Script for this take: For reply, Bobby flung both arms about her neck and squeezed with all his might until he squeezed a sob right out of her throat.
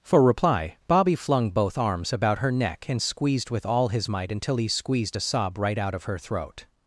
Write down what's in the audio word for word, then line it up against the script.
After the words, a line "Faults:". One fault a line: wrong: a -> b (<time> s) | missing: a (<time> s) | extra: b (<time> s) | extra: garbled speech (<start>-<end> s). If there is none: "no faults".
For reply, Bobby flung both arms about her neck and squeezed with all his might until he squeezed a sob right out of her throat.
Faults:
no faults